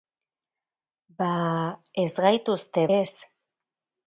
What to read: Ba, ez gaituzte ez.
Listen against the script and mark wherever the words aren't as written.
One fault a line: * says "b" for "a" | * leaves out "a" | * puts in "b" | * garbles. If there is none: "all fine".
all fine